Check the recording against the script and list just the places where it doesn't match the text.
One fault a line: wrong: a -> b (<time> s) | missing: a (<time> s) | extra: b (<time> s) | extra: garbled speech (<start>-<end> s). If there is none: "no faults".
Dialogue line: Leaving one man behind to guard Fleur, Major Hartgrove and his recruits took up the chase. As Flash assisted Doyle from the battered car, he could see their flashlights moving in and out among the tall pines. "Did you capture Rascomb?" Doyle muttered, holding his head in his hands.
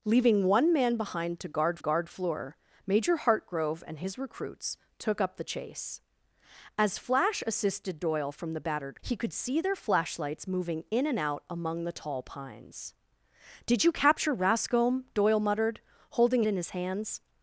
extra: guard (1.8 s)
missing: car (9.0 s)
missing: his head (16.4 s)